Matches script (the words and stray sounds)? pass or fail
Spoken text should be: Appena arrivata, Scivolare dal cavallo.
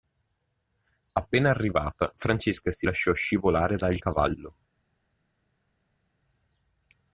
fail